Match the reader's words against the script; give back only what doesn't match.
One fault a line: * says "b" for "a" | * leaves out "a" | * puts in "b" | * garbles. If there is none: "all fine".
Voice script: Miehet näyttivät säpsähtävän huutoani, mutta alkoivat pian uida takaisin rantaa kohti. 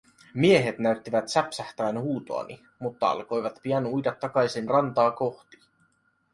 all fine